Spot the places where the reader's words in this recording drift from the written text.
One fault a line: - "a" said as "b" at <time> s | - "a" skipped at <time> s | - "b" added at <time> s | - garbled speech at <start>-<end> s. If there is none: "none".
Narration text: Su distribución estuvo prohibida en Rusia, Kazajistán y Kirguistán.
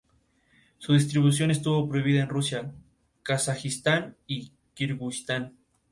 none